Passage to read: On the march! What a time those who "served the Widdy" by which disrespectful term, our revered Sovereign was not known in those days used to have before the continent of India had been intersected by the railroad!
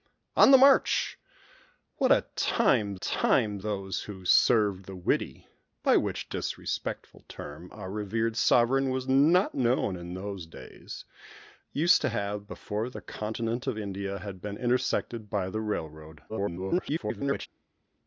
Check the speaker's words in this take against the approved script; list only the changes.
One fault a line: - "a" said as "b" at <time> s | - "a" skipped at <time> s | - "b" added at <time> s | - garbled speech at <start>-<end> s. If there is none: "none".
- "time" added at 3.0 s
- garbled speech at 16.3-17.5 s